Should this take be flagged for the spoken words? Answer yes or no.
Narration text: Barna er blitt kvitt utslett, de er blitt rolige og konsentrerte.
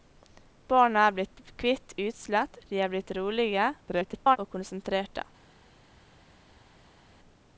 yes